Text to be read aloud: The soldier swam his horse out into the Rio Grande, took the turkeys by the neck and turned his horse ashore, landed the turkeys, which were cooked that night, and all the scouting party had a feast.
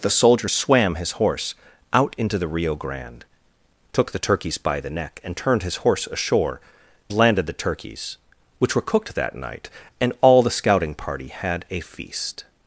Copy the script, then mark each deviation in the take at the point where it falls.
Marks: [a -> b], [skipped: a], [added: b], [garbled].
The soldier swam his horse out into the Rio Grande, took the turkeys by the neck and turned his horse ashore, landed the turkeys, which were cooked that night, and all the scouting party had a feast.